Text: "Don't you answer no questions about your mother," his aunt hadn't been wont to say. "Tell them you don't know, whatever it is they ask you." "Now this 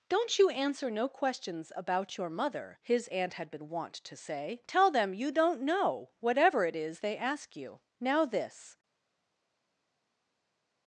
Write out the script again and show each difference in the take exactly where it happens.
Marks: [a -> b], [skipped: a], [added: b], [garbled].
"Don't you answer no questions about your mother," his aunt [hadn't -> had] been wont to say. "Tell them you don't know, whatever it is they ask you." "Now this